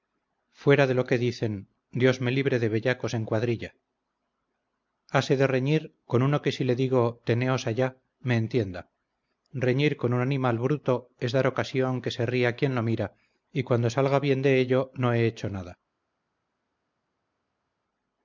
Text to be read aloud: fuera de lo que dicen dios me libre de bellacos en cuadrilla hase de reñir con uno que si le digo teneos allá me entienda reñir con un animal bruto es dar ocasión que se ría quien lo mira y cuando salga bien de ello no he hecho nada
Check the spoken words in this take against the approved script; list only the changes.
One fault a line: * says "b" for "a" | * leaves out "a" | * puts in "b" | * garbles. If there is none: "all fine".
all fine